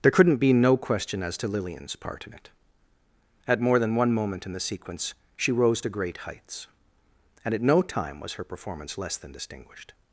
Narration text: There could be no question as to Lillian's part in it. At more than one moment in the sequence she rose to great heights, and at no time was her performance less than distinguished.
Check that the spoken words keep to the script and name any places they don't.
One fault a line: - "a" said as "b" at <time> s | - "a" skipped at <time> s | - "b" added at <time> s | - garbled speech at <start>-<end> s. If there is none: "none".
- "could" said as "couldn't" at 0.1 s